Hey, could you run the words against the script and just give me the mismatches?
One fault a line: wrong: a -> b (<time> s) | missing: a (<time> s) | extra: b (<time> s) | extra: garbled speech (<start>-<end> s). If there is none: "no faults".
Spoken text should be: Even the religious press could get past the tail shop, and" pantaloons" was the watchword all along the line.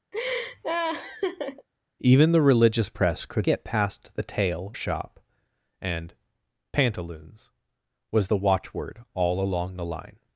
no faults